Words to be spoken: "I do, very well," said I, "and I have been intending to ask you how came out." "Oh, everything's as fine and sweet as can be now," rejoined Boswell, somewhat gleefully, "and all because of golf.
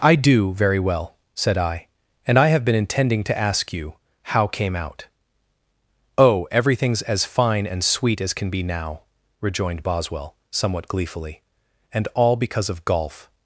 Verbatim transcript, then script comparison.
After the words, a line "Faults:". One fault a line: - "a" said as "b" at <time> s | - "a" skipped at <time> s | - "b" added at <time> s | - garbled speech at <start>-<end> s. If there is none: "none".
"I do, very well," said I, "and I have been intending to ask you how came out." "Oh, everything's as fine and sweet as can be now," rejoined Boswell, somewhat gleefully, "and all because of golf.
Faults:
none